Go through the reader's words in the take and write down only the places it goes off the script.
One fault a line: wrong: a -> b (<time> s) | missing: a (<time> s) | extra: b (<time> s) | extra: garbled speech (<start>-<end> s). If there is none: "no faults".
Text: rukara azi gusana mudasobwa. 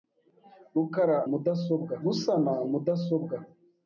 wrong: azi -> mudasobwa (1.3 s)